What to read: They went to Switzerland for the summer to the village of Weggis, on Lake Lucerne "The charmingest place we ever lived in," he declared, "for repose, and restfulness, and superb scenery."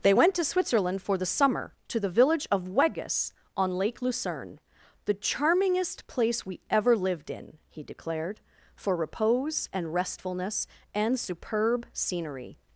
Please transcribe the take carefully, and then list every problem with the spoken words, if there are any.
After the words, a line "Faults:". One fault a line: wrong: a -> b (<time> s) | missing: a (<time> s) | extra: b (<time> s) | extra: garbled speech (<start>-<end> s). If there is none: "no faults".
They went to Switzerland for the summer to the village of Weggis, on Lake Lucerne "The charmingest place we ever lived in," he declared, "for repose, and restfulness, and superb scenery."
Faults:
no faults